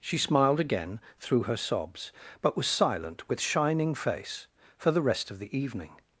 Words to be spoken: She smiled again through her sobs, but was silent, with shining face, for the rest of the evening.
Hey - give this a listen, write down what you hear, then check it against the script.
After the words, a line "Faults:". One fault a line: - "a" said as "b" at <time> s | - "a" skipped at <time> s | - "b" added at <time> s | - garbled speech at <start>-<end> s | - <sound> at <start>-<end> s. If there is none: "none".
She smiled again through her sobs, but was silent, with shining face, for the rest of the evening.
Faults:
none